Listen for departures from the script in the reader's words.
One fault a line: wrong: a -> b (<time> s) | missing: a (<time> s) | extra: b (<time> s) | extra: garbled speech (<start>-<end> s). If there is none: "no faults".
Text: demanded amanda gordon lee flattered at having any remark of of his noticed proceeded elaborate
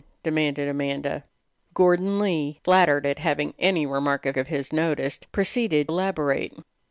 no faults